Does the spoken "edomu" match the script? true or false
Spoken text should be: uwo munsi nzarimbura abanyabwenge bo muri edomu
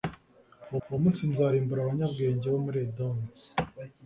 true